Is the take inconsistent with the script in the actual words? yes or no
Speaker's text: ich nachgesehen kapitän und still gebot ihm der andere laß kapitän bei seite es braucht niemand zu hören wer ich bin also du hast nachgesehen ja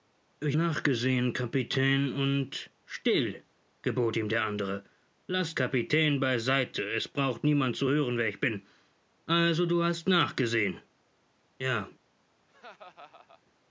no